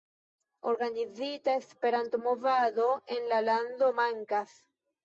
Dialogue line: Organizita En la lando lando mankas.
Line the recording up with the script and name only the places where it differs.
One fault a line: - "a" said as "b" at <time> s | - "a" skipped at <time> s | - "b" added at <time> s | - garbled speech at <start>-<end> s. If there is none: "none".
- "Esperanto movado" added at 1.5 s
- "lando" skipped at 3.9 s